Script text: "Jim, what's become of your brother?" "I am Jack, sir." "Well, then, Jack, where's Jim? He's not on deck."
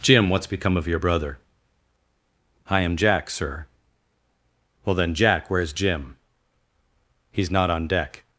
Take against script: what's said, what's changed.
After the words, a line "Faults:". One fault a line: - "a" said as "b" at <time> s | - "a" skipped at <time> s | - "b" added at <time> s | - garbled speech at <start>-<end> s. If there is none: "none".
"Jim, what's become of your brother?" "I am Jack, sir." "Well, then, Jack, where's Jim? He's not on deck."
Faults:
none